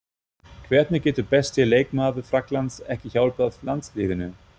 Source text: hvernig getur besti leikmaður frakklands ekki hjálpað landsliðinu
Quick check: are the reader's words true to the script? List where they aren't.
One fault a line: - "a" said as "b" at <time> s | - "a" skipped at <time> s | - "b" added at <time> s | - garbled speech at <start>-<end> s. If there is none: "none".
none